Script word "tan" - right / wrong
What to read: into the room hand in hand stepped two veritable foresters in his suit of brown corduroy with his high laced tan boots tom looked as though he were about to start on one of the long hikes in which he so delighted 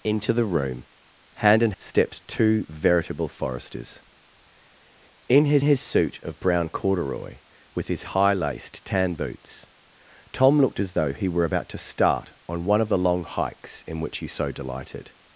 right